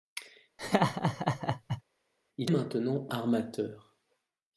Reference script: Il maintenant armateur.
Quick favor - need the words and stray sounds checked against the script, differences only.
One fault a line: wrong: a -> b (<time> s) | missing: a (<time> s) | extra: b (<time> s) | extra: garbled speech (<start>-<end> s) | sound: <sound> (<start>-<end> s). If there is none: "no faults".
sound: laugh (0.6-1.8 s)